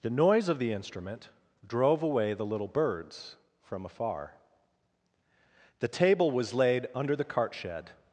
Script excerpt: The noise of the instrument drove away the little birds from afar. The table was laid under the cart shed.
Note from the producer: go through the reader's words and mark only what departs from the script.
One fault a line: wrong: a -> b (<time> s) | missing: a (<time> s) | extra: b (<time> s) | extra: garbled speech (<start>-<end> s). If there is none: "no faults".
no faults